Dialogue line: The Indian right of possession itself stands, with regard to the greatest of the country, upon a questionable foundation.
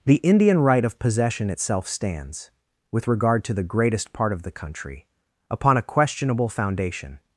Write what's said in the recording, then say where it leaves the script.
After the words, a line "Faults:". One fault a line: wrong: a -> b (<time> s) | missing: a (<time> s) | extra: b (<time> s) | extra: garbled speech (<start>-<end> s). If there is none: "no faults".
The Indian right of possession itself stands, with regard to the greatest part of the country, upon a questionable foundation.
Faults:
extra: part (4.1 s)